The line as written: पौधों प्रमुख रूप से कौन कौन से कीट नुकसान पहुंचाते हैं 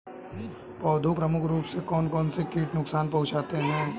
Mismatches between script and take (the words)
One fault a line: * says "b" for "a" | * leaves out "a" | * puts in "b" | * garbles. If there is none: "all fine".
all fine